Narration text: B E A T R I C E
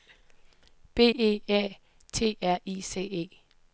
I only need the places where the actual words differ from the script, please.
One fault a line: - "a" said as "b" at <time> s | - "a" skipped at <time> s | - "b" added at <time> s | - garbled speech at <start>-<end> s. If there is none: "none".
none